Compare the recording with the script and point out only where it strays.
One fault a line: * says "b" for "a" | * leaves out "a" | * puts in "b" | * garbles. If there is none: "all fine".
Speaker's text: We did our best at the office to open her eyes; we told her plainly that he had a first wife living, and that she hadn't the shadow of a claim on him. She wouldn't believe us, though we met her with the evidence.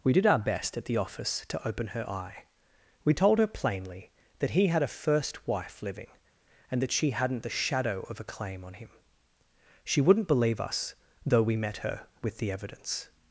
* says "eye" for "eyes"